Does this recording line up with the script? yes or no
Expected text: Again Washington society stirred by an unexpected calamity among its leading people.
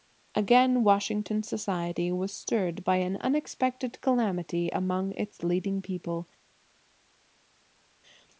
no